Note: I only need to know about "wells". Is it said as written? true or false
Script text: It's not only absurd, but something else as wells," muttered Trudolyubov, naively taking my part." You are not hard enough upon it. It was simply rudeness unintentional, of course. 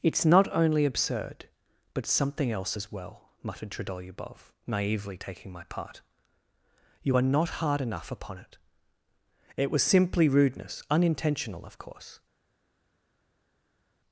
false